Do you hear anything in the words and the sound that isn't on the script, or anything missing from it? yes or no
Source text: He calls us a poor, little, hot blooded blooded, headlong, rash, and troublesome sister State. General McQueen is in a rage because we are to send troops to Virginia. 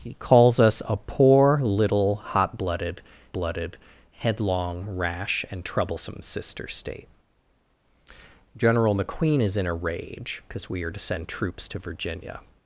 no